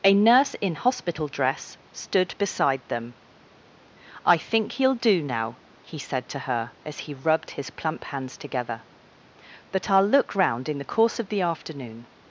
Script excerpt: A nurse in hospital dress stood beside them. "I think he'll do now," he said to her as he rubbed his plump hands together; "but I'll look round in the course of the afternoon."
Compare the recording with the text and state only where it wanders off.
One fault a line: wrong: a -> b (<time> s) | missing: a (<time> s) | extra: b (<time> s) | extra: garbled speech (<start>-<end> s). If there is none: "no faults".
no faults